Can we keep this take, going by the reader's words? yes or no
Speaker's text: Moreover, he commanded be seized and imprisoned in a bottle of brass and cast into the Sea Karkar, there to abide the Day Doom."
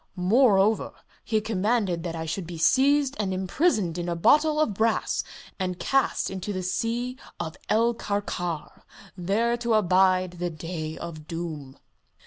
no